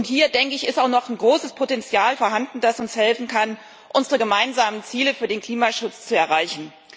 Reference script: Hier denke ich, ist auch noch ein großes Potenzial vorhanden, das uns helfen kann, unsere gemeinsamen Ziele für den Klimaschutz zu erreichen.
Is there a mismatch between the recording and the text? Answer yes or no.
no